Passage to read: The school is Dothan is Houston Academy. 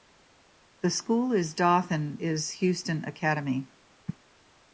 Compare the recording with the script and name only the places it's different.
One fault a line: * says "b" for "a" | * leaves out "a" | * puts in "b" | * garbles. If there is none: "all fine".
all fine